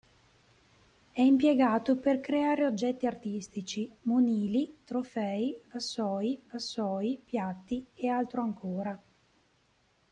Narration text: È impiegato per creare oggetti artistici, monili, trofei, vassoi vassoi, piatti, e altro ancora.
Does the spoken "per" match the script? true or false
true